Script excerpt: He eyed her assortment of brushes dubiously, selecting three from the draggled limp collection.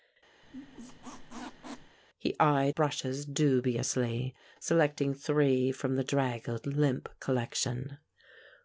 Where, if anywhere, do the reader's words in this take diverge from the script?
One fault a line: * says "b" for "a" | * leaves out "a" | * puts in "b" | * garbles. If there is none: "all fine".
* leaves out "her assortment of"